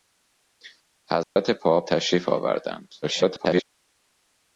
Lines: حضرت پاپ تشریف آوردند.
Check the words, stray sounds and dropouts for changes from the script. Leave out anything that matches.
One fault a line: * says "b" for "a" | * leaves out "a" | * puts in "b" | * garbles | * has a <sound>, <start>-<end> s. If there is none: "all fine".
* has a dropout, 1.2-1.4 s
* garbles